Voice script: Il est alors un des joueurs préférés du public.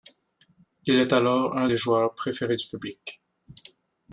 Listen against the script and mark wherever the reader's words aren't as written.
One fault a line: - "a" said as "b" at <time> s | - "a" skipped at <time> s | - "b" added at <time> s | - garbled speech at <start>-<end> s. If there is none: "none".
none